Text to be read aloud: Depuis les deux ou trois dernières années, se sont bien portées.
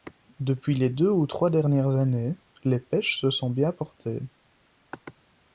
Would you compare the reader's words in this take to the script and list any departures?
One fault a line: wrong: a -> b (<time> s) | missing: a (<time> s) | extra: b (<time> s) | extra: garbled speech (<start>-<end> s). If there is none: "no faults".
extra: les pêches (2.6 s)